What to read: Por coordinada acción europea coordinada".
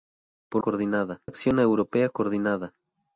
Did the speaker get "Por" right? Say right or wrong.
right